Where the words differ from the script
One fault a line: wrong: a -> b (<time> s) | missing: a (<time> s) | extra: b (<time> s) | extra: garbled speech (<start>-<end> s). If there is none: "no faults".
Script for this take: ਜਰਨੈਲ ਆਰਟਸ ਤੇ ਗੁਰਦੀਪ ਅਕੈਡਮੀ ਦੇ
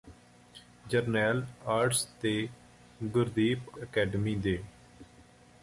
no faults